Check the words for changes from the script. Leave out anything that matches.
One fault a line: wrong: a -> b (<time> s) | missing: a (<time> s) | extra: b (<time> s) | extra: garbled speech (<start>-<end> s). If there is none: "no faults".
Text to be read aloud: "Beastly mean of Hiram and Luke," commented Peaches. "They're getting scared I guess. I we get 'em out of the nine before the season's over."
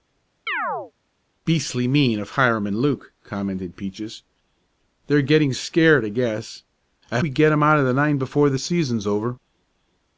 no faults